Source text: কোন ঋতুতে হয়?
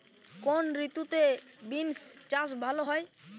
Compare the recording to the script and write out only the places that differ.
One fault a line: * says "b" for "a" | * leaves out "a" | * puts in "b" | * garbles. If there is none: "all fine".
* puts in "বিন্স চাষ ভালো"